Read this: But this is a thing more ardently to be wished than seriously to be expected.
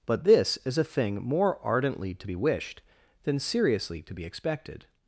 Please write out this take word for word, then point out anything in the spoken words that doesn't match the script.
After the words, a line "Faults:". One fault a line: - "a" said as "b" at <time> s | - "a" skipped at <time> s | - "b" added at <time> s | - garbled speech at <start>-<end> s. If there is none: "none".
But this is a thing more ardently to be wished than seriously to be expected.
Faults:
none